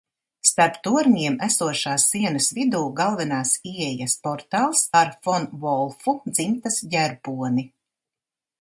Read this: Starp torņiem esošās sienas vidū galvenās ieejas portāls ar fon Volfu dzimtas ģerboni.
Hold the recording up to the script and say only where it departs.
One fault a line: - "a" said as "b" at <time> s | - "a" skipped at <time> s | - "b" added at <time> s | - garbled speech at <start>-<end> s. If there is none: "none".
none